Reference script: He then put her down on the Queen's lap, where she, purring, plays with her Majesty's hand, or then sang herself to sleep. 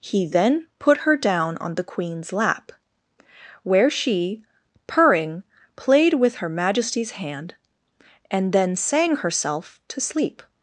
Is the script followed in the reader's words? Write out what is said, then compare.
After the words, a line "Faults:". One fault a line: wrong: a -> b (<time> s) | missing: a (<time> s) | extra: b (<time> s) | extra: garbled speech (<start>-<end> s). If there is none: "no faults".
He then put her down on the Queen's lap, where she, purring, played with her Majesty's hand, and then sang herself to sleep.
Faults:
wrong: plays -> played (5.7 s)
wrong: or -> and (8.3 s)